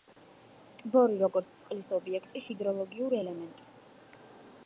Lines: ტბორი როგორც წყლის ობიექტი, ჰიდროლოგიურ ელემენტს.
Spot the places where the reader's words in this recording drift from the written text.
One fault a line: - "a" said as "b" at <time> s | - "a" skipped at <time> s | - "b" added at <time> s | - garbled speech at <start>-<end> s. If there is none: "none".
none